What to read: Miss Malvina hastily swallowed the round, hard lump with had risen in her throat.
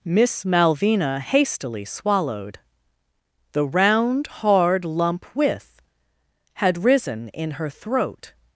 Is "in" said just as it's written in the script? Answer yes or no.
yes